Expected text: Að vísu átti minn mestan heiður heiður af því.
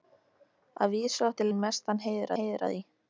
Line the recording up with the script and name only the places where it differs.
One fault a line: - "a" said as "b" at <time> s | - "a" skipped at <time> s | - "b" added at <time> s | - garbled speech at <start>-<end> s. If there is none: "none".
none